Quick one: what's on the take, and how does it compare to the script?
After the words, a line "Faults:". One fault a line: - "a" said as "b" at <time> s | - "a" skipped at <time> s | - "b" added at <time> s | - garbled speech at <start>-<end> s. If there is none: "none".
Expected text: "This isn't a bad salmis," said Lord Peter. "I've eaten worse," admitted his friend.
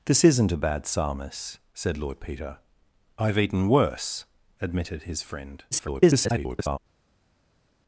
"This isn't a bad salmis," said Lord Peter. "I've eaten worse," admitted his friend. [garbled]
Faults:
- garbled speech at 5.7-6.8 s